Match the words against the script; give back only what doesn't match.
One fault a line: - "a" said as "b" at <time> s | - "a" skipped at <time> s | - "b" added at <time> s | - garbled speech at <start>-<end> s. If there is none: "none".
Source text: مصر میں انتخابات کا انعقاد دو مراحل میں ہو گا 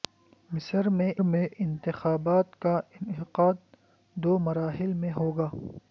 - "میں" added at 1.2 s